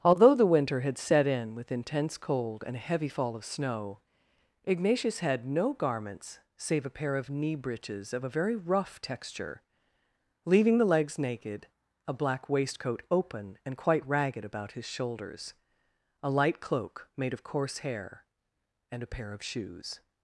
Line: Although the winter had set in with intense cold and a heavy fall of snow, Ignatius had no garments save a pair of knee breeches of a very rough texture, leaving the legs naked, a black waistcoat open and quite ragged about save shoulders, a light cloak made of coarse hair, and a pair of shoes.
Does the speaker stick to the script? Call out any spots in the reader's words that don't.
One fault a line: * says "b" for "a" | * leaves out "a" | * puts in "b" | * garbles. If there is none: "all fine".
* says "his" for "save"